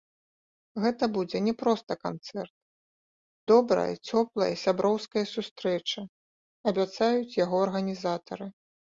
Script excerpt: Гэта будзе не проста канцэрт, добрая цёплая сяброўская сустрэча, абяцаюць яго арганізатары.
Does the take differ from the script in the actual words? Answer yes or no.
no